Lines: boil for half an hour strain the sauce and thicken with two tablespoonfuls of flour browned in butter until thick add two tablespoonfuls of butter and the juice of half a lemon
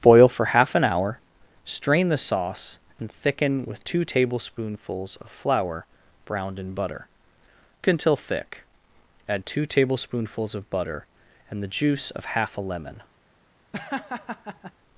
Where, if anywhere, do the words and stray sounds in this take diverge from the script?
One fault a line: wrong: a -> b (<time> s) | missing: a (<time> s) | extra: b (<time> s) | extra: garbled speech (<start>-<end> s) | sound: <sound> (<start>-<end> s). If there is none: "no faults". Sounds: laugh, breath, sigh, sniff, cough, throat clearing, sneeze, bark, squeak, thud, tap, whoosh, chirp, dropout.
sound: laugh (13.7-14.7 s)